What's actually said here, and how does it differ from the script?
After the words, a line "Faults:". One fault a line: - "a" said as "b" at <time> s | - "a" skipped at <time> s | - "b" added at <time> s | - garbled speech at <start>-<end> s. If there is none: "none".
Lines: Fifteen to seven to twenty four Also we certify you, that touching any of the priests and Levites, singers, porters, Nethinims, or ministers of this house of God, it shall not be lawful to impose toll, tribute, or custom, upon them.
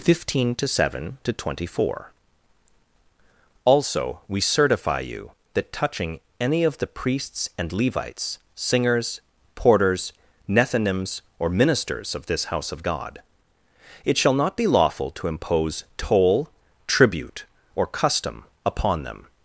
Fifteen to seven to twenty four Also we certify you, that touching any of the priests and Levites, singers, porters, Nethinims, or ministers of this house of God, it shall not be lawful to impose toll, tribute, or custom, upon them.
Faults:
none